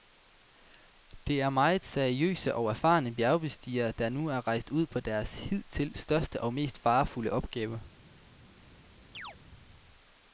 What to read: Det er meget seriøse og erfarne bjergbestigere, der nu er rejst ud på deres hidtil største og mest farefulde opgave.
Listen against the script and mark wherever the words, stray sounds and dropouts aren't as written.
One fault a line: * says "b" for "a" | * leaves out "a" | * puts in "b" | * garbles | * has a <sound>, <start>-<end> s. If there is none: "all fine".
* has a chirp, 9.1-9.4 s